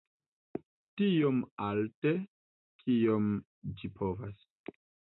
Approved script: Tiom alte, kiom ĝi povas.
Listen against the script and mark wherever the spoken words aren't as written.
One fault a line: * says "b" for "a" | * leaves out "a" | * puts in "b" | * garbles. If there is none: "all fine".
all fine